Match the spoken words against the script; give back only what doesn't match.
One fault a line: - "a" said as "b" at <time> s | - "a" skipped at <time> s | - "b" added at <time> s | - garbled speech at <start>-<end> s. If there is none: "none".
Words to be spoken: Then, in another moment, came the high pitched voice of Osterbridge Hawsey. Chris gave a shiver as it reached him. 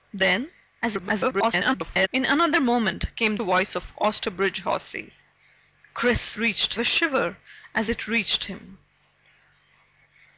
- garbled speech at 0.8-2.1 s
- "the high pitched" skipped at 3.4 s
- "gave" said as "reached" at 6.4 s